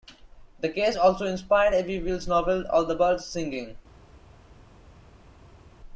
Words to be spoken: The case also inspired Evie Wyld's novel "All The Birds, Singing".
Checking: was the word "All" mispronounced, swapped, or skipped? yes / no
no